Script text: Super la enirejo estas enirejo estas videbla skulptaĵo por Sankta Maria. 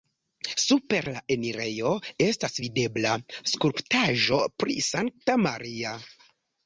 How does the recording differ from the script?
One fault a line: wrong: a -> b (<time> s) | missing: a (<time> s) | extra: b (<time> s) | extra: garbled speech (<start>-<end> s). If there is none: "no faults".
missing: enirejo estas (2.6 s)
wrong: por -> pri (4.7 s)